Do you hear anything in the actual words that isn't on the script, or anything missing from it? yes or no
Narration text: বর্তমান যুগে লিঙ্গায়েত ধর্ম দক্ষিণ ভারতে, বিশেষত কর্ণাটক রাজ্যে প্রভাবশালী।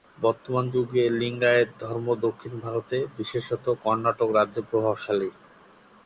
no